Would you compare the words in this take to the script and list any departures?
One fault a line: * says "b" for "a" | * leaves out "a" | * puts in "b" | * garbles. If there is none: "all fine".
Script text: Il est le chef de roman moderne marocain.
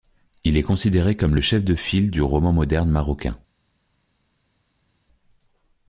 * puts in "considéré comme"
* puts in "file du"